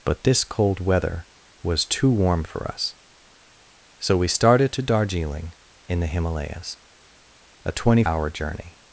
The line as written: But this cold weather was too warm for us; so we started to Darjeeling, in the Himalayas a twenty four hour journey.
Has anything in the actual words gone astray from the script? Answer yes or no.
yes